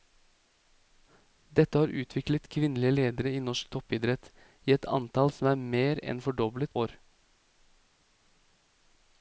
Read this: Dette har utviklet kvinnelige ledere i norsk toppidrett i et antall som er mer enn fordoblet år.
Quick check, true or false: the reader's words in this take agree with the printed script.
true